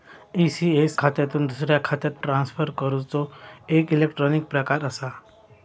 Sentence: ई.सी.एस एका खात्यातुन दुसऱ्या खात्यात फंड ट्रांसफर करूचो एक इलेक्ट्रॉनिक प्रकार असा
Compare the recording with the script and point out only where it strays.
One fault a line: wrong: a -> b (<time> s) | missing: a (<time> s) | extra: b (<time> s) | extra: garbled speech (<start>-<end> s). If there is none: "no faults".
missing: एका (1.0 s)
missing: फंड (2.2 s)